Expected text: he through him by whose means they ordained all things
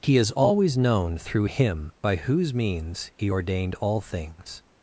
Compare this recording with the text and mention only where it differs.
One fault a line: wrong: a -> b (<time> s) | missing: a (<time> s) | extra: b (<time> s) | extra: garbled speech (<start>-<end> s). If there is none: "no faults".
extra: is always known (0.2 s)
wrong: they -> he (3.2 s)